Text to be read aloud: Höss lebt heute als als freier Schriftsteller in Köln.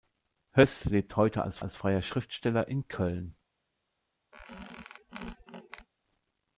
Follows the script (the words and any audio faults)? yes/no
no